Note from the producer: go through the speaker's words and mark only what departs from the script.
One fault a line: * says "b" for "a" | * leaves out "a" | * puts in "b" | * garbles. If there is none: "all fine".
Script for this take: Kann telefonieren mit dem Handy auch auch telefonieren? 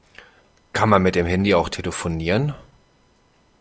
* says "man" for "telefonieren"
* leaves out "auch"